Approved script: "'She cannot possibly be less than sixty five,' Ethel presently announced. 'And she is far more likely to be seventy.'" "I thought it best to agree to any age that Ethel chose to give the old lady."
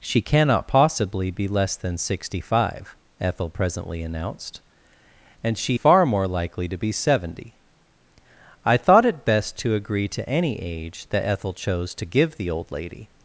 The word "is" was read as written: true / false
false